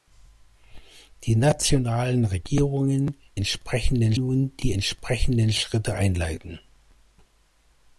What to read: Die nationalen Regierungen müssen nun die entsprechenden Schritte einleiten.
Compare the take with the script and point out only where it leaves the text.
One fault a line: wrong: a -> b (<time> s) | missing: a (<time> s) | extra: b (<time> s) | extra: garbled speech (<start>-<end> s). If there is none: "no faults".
wrong: müssen -> entsprechenden (3.3 s)